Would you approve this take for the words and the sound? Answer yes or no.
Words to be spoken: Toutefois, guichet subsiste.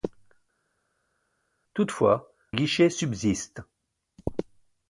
yes